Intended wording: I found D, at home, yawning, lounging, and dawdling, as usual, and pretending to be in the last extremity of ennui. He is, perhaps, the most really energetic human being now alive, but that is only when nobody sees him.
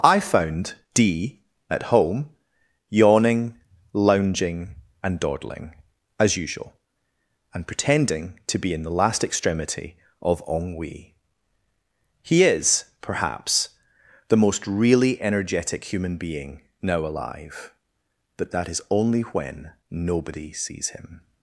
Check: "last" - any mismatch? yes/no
no